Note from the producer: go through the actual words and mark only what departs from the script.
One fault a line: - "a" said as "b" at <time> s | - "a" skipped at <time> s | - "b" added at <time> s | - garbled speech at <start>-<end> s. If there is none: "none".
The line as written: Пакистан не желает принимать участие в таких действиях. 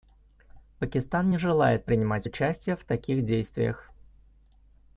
none